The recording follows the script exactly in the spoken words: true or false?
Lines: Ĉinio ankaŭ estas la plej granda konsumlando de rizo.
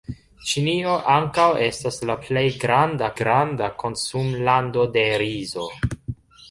false